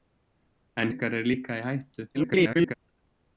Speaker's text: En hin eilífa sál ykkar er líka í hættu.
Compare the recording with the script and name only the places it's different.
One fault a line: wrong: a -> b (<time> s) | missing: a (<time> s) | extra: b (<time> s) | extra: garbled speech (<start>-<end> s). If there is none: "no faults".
missing: hin eilífa sál (0.9 s)
extra: garbled speech (2.1-2.7 s)